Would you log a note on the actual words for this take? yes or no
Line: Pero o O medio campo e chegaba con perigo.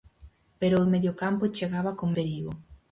no